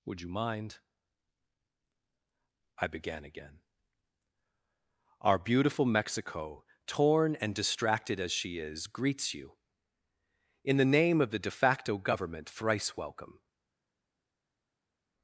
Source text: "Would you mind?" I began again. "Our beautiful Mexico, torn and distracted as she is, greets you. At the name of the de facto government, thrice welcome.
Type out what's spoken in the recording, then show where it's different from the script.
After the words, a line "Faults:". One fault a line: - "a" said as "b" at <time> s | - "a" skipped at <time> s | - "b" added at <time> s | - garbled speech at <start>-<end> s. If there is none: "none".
"Would you mind?" I began again. "Our beautiful Mexico, torn and distracted as she is, greets you. In the name of the de facto government, thrice welcome.
Faults:
- "At" said as "In" at 10.6 s